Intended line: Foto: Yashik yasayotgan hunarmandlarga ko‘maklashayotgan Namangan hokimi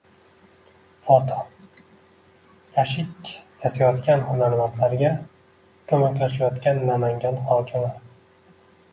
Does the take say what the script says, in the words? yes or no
yes